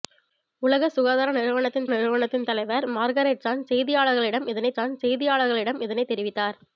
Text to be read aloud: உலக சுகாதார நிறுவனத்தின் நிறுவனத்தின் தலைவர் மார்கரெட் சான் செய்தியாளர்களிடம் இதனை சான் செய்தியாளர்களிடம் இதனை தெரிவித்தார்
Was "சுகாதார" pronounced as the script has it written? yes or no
yes